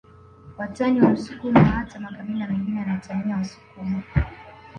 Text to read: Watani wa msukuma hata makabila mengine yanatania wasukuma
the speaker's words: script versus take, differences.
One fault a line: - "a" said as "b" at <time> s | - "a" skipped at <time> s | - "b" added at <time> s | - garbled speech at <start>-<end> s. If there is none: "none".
none